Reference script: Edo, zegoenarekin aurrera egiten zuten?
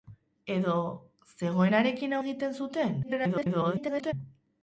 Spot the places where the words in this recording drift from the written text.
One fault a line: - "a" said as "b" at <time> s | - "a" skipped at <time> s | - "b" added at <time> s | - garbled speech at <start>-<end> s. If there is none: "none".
- "aurrera" skipped at 2.1 s
- garbled speech at 3.0-4.1 s